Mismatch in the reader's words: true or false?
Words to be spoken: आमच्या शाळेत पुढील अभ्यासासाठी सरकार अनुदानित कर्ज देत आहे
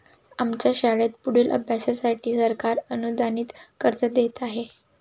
false